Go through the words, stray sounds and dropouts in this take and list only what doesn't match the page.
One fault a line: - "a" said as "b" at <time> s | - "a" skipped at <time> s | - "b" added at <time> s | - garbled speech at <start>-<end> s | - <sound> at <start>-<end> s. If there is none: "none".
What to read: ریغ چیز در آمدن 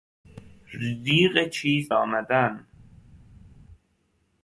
- "در" skipped at 1.9 s